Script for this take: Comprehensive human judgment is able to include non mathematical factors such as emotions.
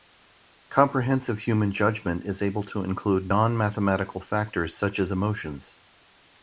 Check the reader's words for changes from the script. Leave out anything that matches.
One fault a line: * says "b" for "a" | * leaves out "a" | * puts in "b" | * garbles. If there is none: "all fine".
all fine